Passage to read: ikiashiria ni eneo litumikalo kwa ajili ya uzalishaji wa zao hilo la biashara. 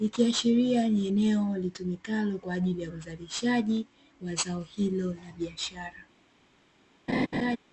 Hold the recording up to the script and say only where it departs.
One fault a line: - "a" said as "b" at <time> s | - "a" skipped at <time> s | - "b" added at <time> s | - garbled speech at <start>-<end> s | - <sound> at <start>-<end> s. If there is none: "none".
- laugh at 7.1-7.6 s